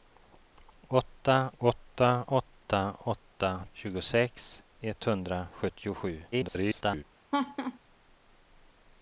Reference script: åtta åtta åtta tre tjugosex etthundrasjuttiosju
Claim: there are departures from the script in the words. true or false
true